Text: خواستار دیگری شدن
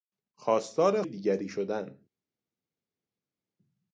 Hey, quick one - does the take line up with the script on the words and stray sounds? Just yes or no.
yes